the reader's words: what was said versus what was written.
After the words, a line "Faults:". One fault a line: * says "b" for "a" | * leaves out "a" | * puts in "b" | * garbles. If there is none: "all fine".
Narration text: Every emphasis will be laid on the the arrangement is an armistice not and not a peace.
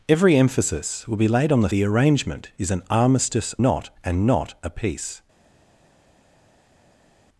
Every emphasis will be laid on the the arrangement is an armistice not and not a peace.
Faults:
all fine